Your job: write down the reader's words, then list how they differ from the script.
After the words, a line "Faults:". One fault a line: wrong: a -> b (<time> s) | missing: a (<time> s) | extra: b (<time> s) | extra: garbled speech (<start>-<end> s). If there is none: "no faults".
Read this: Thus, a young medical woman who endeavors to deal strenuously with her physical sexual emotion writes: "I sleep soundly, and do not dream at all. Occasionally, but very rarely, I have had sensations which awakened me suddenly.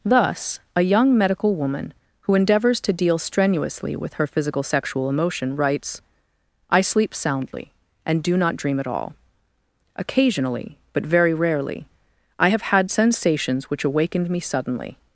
Thus, a young medical woman who endeavors to deal strenuously with her physical sexual emotion writes: "I sleep soundly, and do not dream at all. Occasionally, but very rarely, I have had sensations which awakened me suddenly.
Faults:
no faults